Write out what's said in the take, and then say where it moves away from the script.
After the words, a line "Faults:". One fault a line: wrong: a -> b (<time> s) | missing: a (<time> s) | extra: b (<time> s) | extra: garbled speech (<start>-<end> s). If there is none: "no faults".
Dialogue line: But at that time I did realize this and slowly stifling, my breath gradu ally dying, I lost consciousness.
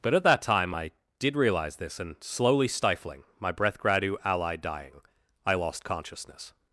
But at that time I did realize this and slowly stifling, my breath gradu ally dying, I lost consciousness.
Faults:
no faults